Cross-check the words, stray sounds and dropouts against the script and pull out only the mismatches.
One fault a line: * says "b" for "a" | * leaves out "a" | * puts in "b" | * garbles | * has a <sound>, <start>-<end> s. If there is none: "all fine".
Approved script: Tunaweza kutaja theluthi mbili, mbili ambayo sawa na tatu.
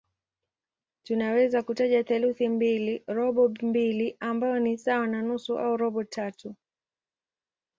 * puts in "robo"
* puts in "ni"
* puts in "nusu au robo"